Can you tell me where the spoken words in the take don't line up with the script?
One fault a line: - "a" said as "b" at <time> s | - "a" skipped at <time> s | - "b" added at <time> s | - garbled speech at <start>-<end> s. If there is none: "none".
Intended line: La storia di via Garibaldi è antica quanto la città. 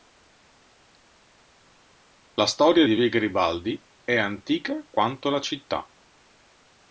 none